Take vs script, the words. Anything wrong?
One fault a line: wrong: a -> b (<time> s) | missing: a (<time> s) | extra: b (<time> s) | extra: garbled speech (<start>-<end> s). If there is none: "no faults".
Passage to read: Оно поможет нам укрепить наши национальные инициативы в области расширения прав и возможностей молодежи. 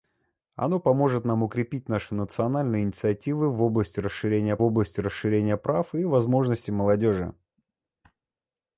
extra: области расширения (4.6 s)